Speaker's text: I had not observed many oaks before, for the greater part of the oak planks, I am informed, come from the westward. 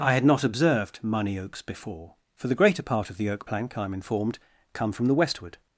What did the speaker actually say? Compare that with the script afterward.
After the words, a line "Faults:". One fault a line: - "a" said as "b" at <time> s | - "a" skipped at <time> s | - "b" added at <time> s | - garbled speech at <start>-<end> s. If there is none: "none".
I had not observed money oaks before, for the greater part of the oak plank, I am informed, come from the westward.
Faults:
- "many" said as "money" at 1.0 s
- "planks" said as "plank" at 3.4 s